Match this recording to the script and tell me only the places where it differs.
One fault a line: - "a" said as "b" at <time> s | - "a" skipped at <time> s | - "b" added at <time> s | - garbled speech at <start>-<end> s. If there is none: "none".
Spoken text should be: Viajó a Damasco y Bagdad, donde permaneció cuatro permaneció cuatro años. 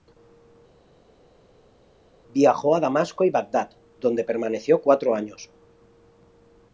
- "permaneció cuatro" skipped at 5.1 s